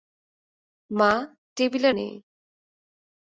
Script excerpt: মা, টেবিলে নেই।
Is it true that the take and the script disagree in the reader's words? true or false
false